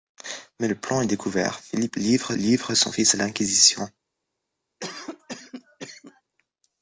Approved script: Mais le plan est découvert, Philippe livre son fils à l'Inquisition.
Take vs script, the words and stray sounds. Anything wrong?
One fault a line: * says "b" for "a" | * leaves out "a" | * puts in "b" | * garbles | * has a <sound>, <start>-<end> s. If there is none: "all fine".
* puts in "livre"
* has a cough, 4.8-6.2 s